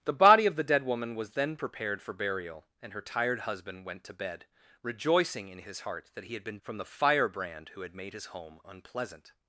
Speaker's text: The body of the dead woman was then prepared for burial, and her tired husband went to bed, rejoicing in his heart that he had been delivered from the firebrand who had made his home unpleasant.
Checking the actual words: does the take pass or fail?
fail